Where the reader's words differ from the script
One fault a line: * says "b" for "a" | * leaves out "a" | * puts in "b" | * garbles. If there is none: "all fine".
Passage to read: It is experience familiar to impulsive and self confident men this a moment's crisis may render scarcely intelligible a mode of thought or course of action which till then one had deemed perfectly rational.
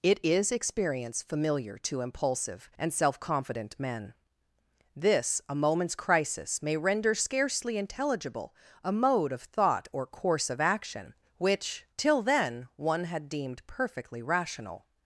all fine